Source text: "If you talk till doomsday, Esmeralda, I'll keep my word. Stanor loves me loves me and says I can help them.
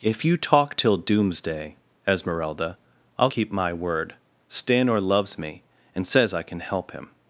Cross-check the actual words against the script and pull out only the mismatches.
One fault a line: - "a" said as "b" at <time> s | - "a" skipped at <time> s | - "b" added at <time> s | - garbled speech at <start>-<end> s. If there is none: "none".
- "loves me" skipped at 5.6 s
- "them" said as "him" at 6.9 s